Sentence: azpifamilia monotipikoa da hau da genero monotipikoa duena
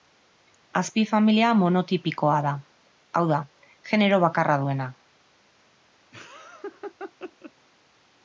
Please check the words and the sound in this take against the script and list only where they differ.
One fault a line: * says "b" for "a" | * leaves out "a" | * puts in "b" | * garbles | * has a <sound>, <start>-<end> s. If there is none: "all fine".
* says "bakarra" for "monotipikoa"
* has a laugh, 6.1-7.5 s